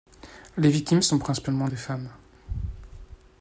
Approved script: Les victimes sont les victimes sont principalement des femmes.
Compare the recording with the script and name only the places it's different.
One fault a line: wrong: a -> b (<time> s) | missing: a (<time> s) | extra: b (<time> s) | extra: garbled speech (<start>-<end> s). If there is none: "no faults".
missing: les victimes sont (1.2 s)